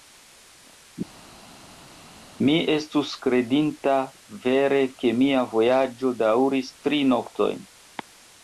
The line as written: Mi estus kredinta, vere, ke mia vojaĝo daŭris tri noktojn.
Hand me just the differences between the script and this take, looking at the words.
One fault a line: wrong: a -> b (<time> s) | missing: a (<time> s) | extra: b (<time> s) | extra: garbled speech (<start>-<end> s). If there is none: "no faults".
no faults